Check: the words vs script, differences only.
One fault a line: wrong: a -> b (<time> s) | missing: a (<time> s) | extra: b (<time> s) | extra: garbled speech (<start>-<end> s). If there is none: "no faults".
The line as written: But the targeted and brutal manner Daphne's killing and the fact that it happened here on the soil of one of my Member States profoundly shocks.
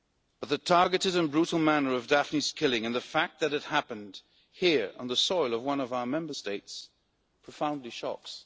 extra: of (1.9 s)
wrong: my -> our (5.9 s)